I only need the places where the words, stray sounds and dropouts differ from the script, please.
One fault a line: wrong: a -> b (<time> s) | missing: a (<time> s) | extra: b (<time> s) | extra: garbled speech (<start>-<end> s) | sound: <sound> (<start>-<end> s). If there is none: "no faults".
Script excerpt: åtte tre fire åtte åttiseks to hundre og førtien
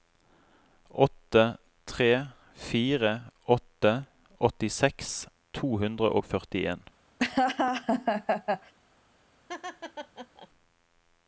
sound: laugh (7.2-8.7 s)
sound: laugh (9.5-10.5 s)